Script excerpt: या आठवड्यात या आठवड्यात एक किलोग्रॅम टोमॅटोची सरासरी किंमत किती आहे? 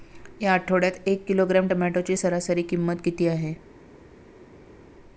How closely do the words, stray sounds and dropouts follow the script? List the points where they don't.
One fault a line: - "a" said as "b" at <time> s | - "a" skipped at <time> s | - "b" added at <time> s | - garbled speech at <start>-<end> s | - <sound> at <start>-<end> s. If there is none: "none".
- "या आठवड्यात" skipped at 1.1 s